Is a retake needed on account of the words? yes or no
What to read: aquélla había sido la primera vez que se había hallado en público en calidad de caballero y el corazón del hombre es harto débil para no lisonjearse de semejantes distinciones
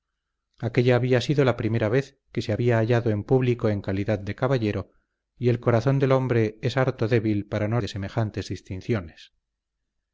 yes